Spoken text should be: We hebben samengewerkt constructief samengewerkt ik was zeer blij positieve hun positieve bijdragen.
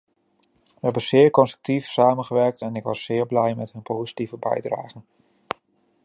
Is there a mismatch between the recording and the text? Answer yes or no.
yes